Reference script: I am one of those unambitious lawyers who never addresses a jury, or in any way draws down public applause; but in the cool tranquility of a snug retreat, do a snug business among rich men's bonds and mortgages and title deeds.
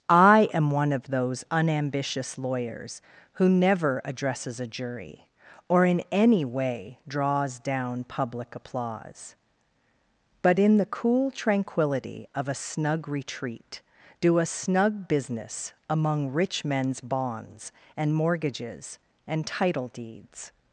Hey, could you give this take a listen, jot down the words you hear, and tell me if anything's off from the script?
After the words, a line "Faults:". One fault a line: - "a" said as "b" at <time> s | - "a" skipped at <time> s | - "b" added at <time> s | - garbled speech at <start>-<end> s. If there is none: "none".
I am one of those unambitious lawyers who never addresses a jury, or in any way draws down public applause; but in the cool tranquility of a snug retreat, do a snug business among rich men's bonds and mortgages and title deeds.
Faults:
none